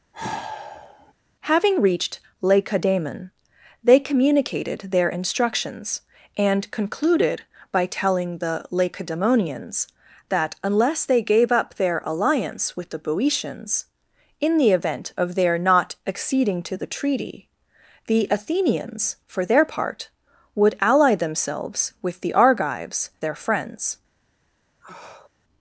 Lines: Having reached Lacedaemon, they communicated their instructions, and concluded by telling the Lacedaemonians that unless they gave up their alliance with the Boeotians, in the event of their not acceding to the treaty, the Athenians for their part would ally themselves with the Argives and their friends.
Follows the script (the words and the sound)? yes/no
no